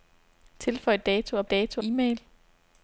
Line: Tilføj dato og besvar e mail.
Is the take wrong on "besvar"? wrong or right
wrong